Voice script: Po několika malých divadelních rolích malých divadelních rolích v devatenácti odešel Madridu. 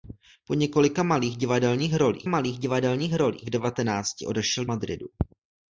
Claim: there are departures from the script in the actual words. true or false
false